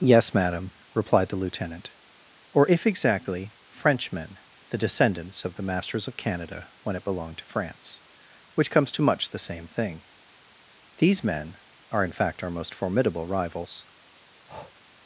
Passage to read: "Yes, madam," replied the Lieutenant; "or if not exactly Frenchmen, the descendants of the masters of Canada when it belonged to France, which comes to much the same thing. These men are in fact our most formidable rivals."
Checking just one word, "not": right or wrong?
wrong